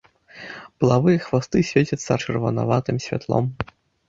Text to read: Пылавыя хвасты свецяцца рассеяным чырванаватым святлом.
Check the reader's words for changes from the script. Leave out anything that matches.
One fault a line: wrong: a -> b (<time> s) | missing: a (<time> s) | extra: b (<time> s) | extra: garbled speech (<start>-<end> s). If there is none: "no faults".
missing: рассеяным (2.1 s)